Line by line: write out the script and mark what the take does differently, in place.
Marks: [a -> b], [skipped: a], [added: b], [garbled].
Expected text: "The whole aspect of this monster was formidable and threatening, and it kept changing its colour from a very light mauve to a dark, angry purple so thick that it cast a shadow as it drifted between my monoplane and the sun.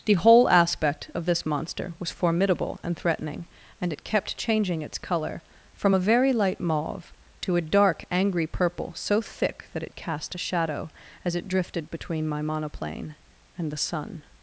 "The whole aspect of this monster was formidable and threatening, and it kept changing its colour from a very light mauve to a dark, angry purple so thick that it cast a shadow as it drifted between my monoplane and the sun.